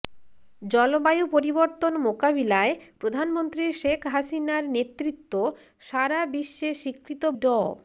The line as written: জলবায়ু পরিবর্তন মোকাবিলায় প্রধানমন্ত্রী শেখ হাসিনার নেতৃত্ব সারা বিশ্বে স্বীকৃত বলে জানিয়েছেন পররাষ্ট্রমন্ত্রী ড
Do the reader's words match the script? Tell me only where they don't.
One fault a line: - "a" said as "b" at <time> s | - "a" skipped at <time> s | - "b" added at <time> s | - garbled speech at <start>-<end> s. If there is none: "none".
- "বলে জানিয়েছেন পররাষ্ট্রমন্ত্রী" skipped at 7.2 s